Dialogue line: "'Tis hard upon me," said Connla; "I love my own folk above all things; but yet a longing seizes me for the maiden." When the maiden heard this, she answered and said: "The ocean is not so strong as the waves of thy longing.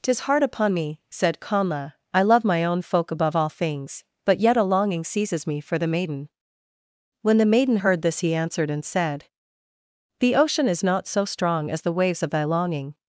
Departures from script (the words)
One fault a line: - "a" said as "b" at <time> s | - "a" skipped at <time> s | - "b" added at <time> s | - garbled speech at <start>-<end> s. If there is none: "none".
- "she" said as "he" at 8.2 s